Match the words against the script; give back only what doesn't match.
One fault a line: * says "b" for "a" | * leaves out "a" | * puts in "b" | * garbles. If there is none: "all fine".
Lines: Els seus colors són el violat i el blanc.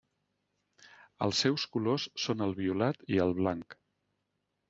all fine